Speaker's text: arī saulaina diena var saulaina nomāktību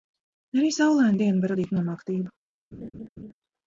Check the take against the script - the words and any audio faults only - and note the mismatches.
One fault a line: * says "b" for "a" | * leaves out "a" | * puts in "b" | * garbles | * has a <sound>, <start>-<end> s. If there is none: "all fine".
* says "radīt" for "saulaina"
* has a laugh, 2.7-3.3 s